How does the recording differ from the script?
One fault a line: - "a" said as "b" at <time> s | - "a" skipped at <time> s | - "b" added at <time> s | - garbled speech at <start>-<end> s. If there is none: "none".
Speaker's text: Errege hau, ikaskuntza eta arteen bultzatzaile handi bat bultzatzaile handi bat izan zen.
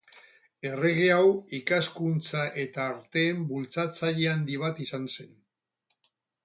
- "bultzatzaile handi bat" skipped at 4.8 s